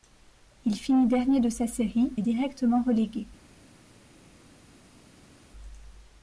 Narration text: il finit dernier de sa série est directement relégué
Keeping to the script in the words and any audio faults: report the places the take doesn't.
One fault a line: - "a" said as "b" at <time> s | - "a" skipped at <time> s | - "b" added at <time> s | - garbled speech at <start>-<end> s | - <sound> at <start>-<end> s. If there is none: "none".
none